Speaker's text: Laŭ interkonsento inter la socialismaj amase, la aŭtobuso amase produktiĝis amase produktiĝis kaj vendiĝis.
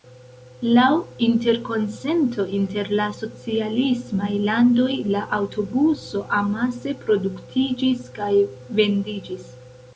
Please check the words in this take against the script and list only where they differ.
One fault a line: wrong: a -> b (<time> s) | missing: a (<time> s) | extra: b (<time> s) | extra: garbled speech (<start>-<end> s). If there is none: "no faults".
wrong: amase -> landoj (4.5 s)
missing: amase produktiĝis (8.1 s)